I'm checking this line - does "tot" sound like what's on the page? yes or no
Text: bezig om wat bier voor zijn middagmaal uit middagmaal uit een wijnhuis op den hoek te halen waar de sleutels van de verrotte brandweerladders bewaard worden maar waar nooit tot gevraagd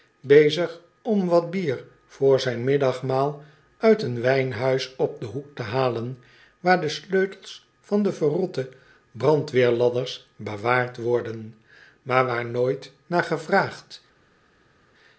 no